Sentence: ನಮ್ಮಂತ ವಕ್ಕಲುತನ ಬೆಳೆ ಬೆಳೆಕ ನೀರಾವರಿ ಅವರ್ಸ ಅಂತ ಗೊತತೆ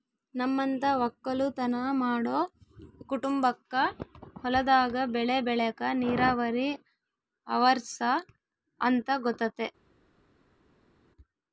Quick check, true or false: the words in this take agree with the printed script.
false